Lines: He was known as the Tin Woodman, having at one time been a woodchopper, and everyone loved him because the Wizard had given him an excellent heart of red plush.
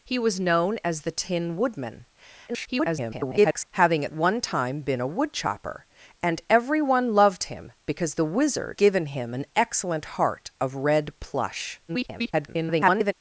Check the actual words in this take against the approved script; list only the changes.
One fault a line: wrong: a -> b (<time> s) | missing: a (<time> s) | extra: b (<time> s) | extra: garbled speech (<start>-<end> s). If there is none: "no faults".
extra: garbled speech (2.5-3.7 s)
missing: had (8.8 s)
extra: garbled speech (11.9-13.1 s)